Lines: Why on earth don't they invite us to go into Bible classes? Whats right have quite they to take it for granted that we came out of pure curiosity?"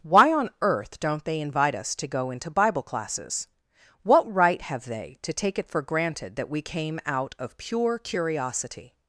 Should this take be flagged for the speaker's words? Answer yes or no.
yes